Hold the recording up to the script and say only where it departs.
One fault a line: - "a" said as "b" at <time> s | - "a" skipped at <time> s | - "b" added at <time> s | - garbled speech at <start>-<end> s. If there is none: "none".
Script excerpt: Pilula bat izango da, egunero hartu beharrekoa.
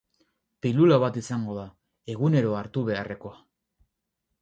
none